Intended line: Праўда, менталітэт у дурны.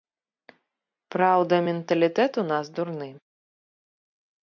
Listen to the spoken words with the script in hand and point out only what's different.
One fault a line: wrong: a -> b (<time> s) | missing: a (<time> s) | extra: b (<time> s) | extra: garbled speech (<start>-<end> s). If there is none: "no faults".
extra: нас (2.6 s)